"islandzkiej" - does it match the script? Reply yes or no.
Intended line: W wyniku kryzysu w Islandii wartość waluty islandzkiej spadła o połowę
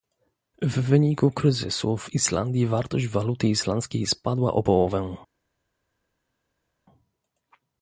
yes